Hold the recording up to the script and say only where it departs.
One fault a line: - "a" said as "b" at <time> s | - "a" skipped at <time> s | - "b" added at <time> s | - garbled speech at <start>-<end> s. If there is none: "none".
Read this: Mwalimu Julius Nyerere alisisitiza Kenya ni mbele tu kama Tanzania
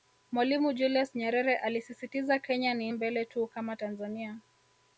none